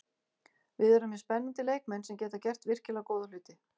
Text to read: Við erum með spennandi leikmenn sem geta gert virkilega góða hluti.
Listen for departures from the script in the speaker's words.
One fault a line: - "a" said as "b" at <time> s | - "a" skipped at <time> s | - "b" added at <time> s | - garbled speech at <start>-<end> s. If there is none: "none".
none